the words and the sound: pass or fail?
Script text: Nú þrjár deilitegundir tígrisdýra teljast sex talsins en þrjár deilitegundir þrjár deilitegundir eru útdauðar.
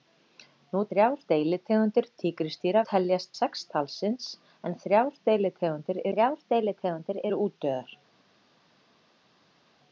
pass